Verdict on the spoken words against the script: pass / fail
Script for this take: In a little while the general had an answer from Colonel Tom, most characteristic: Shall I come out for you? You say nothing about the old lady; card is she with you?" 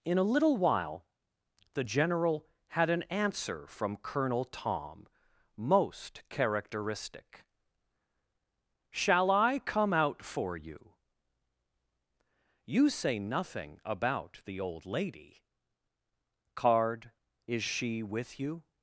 pass